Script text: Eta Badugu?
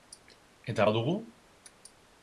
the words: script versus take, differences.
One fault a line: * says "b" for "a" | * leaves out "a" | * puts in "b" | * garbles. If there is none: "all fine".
all fine